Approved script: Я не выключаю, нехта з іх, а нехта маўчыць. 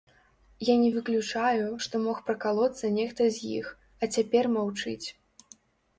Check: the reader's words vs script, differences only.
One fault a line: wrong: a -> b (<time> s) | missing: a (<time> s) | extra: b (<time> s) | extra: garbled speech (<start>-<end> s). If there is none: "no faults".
extra: што мог пракалоцца (1.8 s)
wrong: нехта -> цяпер (4.2 s)